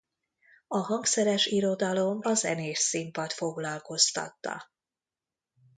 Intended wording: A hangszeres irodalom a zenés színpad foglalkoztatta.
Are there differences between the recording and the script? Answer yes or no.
no